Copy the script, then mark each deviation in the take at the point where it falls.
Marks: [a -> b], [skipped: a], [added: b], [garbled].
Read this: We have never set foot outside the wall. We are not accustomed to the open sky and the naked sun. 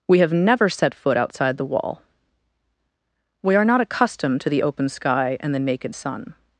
We have never set foot outside the wall. We are not accustomed to the open sky and the naked sun.